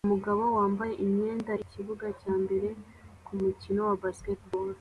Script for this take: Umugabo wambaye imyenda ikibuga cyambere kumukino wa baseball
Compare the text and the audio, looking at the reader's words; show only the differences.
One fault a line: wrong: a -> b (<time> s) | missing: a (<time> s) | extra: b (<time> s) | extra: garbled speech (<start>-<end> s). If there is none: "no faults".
no faults